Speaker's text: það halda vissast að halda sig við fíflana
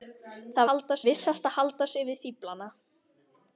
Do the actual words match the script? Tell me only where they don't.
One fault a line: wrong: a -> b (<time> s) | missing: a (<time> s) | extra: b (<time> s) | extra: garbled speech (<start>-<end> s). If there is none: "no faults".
no faults